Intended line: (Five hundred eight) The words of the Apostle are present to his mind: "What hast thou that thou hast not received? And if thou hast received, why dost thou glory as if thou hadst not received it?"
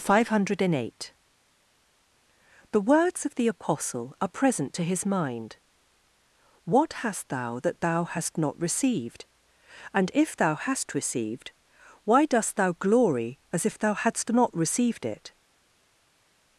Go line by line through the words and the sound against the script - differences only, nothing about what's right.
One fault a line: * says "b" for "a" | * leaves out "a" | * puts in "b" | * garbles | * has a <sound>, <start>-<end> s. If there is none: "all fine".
all fine